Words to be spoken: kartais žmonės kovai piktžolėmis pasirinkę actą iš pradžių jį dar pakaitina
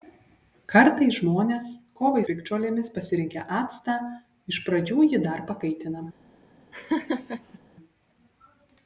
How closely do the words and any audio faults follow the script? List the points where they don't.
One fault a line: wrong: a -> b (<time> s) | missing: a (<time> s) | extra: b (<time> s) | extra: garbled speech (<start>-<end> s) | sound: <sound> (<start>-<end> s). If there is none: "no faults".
sound: laugh (6.7-7.6 s)